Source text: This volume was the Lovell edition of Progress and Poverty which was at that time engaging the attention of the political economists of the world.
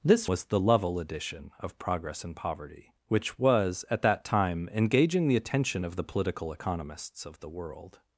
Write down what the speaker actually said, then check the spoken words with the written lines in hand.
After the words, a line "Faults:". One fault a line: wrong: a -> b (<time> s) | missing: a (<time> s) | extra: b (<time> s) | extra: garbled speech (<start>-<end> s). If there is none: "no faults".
This was the Lovell edition of Progress and Poverty which was at that time engaging the attention of the political economists of the world.
Faults:
missing: volume (0.2 s)